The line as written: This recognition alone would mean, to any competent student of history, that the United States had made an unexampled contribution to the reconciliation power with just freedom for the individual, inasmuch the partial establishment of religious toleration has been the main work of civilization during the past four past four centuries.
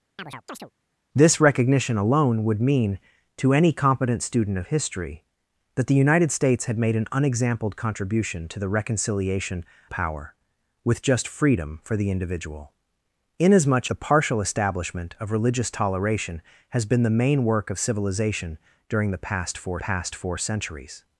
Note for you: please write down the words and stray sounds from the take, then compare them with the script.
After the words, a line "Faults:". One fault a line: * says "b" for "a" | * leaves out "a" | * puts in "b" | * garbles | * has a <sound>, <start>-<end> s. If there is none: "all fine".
This recognition alone would mean, to any competent student of history, that the United States had made an unexampled contribution to the reconciliation power with just freedom for the individual, inasmuch the partial establishment of religious toleration has been the main work of civilization during the past four past four centuries.
Faults:
* has a chirp, 0.2-0.7 s